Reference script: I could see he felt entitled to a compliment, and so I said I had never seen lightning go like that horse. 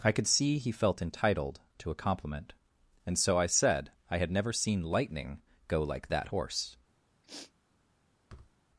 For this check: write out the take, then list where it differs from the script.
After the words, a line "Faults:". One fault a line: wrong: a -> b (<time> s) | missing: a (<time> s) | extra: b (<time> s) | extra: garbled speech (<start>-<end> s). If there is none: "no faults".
I could see he felt entitled to a compliment, and so I said I had never seen lightning go like that horse.
Faults:
no faults